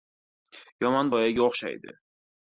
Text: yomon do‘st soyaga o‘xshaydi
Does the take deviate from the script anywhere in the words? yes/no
yes